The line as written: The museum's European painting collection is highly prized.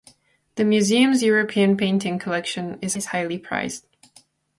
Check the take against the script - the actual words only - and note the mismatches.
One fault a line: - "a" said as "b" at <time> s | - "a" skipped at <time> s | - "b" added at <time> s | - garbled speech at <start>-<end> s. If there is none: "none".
- "is" added at 2.9 s